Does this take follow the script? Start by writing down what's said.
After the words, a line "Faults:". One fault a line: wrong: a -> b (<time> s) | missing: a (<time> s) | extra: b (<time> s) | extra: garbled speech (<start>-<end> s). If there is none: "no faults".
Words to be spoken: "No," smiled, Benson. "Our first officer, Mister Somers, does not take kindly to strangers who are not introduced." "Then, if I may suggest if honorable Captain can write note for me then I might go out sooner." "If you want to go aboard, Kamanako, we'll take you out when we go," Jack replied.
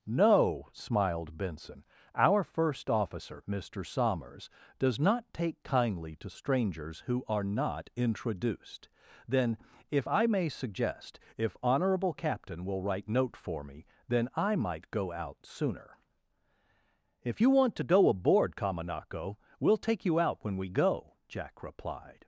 "No," smiled, Benson. "Our first officer, Mister Somers, does not take kindly to strangers who are not introduced." "Then, if I may suggest if honorable Captain will write note for me then I might go out sooner." "If you want to go aboard, Kamanako, we'll take you out when we go," Jack replied.
Faults:
wrong: can -> will (12.6 s)